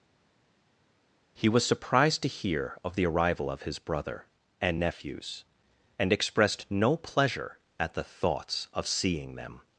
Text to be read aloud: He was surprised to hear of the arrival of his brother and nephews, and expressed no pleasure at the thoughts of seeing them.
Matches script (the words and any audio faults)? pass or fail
pass